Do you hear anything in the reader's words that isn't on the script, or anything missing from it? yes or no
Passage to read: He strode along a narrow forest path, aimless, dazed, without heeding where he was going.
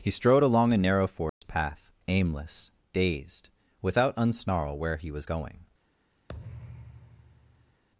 yes